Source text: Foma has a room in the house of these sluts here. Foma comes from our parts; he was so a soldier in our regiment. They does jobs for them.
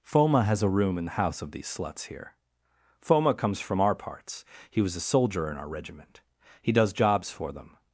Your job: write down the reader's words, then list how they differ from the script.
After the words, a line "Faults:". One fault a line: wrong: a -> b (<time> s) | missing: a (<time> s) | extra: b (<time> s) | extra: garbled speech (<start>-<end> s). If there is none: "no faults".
Foma has a room in the house of these sluts here. Foma comes from our parts; he was a soldier in our regiment. He does jobs for them.
Faults:
missing: so (4.9 s)
wrong: They -> He (6.6 s)